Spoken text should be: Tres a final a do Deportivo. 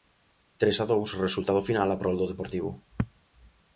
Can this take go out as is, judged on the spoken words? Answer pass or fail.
fail